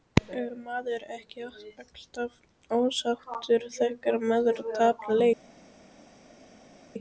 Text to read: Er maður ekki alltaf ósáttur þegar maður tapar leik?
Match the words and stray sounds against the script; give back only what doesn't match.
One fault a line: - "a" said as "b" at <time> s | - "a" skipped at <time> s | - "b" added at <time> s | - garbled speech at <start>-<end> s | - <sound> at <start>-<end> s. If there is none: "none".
none